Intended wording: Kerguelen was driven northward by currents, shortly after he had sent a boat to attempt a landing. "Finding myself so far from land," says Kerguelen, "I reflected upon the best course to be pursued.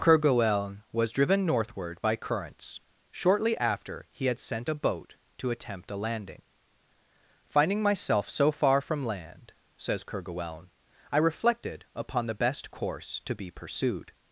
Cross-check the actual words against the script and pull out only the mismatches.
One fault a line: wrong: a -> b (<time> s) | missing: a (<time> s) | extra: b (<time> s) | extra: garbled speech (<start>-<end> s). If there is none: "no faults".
no faults